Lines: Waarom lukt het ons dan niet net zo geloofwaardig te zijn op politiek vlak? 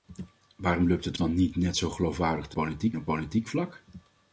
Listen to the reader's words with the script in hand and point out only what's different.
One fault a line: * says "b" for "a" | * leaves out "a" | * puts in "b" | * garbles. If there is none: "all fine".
* leaves out "ons"
* says "politiek" for "zijn"